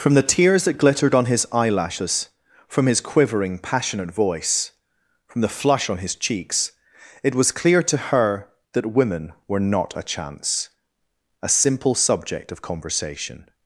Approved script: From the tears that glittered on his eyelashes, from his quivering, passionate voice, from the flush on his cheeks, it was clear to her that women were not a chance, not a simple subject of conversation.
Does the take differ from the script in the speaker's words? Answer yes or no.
yes